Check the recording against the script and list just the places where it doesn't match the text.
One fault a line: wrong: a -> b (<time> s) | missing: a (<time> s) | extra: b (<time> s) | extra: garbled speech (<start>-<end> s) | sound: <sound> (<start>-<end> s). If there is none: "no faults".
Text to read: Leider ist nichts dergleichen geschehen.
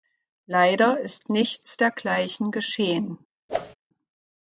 sound: whoosh (3.5-3.8 s)